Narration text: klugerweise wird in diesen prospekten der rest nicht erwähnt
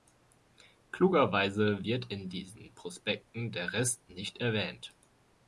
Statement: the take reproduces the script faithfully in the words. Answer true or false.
true